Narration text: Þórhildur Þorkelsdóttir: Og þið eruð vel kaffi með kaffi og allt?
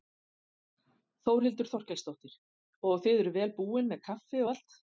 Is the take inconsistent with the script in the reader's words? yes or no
yes